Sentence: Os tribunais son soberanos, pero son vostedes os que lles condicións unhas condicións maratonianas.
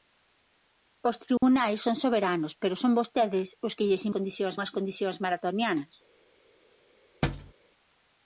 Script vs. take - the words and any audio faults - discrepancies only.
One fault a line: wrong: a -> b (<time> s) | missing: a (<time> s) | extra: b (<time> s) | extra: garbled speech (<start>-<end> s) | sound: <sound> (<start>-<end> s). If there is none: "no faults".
sound: dropout (1.4-1.4 s)
sound: thud (7.2-7.5 s)